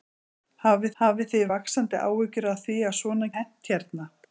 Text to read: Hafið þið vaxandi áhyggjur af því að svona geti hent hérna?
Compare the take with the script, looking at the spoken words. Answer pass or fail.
fail